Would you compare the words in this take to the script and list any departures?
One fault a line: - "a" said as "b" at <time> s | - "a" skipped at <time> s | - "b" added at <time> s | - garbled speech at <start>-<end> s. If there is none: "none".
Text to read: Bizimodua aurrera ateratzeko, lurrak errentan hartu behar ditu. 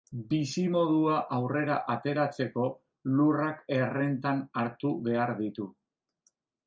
none